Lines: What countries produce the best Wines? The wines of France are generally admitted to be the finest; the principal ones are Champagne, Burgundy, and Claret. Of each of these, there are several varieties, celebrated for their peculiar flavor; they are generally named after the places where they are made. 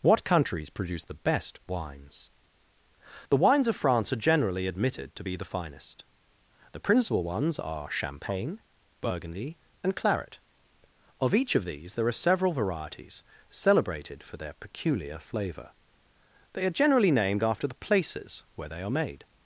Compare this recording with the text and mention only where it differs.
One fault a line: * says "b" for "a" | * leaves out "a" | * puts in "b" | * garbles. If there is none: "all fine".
all fine